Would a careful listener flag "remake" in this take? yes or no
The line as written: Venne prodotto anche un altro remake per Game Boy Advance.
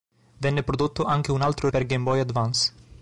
yes